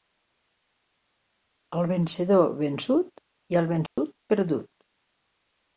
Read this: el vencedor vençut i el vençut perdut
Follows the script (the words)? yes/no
yes